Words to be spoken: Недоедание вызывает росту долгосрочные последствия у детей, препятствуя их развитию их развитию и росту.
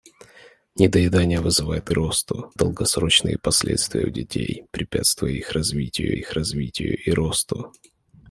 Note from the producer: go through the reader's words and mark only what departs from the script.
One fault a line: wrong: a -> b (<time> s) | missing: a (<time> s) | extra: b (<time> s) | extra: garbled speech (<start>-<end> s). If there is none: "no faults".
no faults